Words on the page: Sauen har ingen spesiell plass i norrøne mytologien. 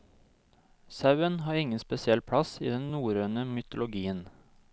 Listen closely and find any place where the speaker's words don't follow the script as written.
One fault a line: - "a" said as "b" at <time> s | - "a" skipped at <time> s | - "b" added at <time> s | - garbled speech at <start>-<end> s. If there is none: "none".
- "den" added at 2.7 s